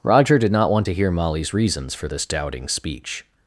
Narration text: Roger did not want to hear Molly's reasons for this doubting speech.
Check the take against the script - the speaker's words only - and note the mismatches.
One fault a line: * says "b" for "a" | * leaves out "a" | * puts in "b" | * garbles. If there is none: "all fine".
all fine